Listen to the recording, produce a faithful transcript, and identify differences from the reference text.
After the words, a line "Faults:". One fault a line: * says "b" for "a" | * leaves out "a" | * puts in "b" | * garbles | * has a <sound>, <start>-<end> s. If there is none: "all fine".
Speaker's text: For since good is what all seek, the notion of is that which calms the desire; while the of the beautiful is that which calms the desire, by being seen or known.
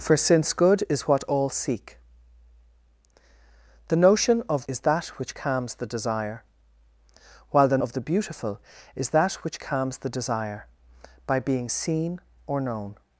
For since good is what all seek, the notion of is that which calms the desire; while the of the beautiful is that which calms the desire, by being seen or known.
Faults:
all fine